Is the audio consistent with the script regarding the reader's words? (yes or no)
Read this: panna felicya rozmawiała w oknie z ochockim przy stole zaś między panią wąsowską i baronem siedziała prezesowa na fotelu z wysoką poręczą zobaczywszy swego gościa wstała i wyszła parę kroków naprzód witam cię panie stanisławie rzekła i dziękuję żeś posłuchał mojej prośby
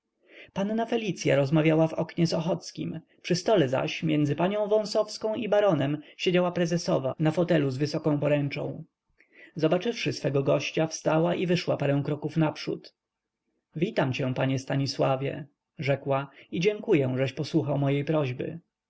yes